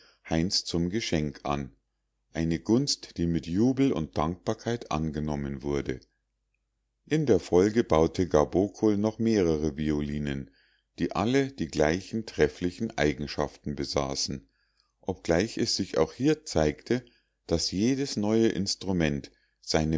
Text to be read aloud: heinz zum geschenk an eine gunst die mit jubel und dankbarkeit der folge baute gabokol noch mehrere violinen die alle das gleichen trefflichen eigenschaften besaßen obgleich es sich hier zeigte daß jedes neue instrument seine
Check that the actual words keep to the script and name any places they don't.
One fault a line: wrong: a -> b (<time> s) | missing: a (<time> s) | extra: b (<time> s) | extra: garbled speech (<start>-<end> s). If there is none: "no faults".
extra: angenommen wurde in (4.9 s)
wrong: das -> die (11.5 s)
extra: auch (16.0 s)